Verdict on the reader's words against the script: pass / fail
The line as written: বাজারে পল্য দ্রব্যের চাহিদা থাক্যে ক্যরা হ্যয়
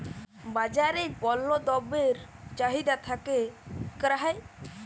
pass